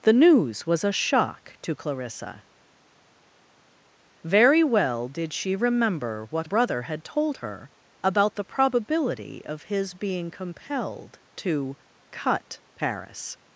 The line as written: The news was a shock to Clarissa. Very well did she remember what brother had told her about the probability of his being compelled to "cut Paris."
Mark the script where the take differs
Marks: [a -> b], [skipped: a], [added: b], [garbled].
The news was a shock to Clarissa. Very well did she remember what brother had told her about the probability of his being compelled to "cut Paris."